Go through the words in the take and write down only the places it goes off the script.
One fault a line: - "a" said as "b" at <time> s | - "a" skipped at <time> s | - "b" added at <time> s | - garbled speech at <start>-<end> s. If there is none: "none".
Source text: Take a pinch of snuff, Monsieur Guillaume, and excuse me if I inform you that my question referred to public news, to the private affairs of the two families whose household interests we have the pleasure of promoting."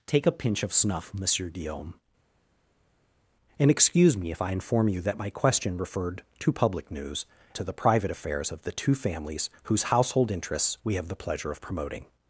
none